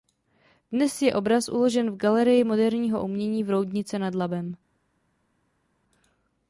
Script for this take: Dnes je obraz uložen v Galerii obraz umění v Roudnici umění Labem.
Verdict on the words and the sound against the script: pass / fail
fail